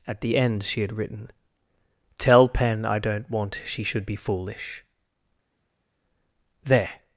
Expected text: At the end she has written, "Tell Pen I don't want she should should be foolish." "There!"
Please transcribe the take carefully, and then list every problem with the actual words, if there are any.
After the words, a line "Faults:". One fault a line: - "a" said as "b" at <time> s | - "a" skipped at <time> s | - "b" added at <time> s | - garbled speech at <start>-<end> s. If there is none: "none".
At the end she had written, "Tell Pen I don't want she should be foolish." "There!"
Faults:
- "has" said as "had" at 0.8 s
- "should" skipped at 4.1 s